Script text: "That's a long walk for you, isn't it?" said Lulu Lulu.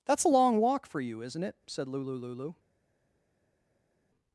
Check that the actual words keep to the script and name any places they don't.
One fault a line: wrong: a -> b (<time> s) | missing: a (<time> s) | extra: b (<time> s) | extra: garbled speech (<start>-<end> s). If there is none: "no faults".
no faults